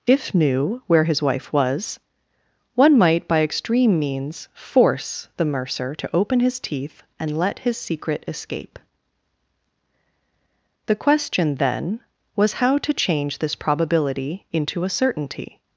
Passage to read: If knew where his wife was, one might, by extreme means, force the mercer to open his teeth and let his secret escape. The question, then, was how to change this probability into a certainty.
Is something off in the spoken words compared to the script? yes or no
no